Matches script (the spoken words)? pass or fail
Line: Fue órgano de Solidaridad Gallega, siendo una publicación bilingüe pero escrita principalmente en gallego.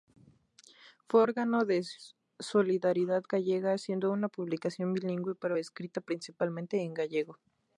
pass